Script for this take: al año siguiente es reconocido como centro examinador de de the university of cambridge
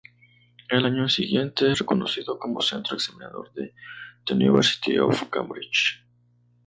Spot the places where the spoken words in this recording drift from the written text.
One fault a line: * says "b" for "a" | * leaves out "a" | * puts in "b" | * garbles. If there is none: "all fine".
* leaves out "de"